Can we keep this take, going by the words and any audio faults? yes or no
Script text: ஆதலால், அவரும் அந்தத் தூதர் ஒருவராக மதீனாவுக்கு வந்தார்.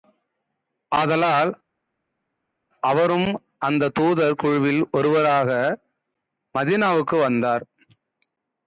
no